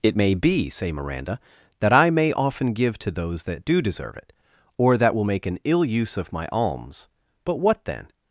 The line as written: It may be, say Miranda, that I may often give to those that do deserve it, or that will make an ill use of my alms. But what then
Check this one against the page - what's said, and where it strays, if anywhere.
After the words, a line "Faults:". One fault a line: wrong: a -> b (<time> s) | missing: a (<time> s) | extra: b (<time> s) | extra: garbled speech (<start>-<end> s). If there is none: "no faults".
It may be, say Miranda, that I may often give to those that do deserve it, or that will make an ill use of my alms. But what then
Faults:
no faults